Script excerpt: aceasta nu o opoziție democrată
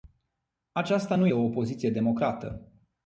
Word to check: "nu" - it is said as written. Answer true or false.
true